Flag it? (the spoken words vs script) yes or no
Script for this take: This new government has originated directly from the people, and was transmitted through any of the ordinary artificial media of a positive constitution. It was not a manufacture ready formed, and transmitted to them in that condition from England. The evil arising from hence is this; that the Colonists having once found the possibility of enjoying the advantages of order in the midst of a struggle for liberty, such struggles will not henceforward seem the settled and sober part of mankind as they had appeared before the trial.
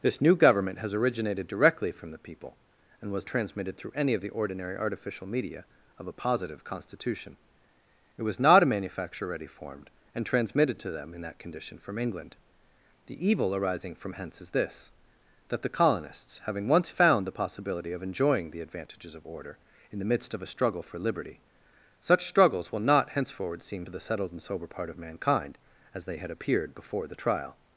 no